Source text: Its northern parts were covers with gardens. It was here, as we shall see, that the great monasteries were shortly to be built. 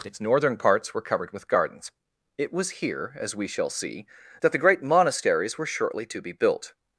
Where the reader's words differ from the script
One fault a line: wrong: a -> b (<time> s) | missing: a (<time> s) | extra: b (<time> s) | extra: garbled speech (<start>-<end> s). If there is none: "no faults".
wrong: covers -> covered (1.0 s)